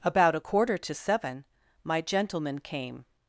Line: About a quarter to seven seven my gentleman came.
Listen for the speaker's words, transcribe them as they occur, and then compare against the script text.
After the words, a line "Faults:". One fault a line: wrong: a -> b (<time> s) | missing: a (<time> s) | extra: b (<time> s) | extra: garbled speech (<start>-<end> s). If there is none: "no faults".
About a quarter to seven my gentleman came.
Faults:
missing: seven (1.4 s)